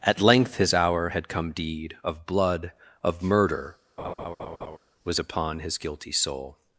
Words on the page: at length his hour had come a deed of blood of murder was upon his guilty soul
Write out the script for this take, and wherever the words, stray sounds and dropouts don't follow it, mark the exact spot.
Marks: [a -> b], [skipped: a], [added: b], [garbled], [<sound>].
at length his hour had come [skipped: a] deed of blood of murder [laugh] was upon his guilty soul